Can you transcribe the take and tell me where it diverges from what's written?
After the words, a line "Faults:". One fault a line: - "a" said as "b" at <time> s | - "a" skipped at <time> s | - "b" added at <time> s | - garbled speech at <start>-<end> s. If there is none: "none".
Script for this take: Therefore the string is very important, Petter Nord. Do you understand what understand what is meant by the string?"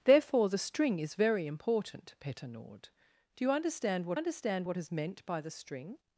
Therefore the string is very important, Petter Nord. Do you understand what understand what is meant by the string?"
Faults:
none